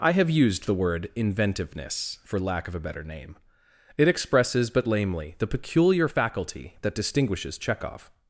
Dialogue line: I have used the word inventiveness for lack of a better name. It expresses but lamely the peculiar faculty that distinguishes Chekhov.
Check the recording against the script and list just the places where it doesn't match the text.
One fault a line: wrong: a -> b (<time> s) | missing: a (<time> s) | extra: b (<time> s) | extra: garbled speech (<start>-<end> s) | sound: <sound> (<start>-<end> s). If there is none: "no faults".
no faults